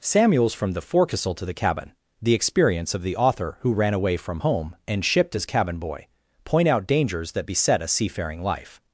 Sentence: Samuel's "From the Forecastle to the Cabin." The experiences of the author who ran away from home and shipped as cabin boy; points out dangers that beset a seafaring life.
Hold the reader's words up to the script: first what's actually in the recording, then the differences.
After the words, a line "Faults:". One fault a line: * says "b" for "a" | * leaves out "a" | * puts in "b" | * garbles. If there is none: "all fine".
Samuel's "From the Forecastle to the Cabin." The experience of the author who ran away from home and shipped as cabin boy; point out dangers that beset a seafaring life.
Faults:
* says "experience" for "experiences"
* says "point" for "points"